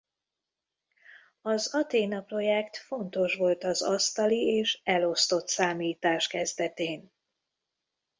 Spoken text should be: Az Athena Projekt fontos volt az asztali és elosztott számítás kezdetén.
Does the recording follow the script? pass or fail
pass